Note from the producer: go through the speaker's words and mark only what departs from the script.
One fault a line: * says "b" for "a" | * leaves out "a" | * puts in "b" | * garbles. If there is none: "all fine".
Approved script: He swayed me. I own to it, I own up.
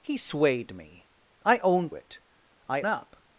* leaves out "to"
* leaves out "own"